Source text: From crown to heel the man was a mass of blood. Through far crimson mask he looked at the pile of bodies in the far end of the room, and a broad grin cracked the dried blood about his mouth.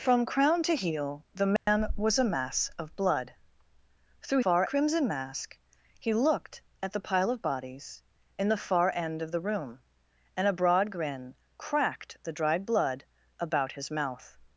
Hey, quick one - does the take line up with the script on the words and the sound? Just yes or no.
no